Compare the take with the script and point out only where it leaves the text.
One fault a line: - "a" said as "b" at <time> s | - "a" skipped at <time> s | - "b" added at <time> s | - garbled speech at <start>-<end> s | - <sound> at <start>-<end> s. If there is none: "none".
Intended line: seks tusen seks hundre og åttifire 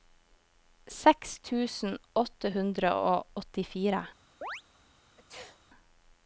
- "seks" said as "åtte" at 2.2 s
- chirp at 4.4-4.6 s
- sneeze at 5.2-5.6 s